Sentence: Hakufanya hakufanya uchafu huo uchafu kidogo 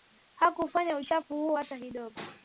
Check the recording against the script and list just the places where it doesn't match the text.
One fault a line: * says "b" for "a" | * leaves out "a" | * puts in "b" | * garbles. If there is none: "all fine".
* leaves out "hakufanya"
* says "hata" for "uchafu"